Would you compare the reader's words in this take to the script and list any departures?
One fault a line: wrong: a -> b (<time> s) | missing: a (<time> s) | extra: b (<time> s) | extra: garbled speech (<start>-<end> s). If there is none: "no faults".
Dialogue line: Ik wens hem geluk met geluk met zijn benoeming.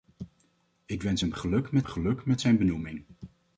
no faults